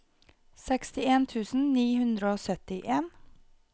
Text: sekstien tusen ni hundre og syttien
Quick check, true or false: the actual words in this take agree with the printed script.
true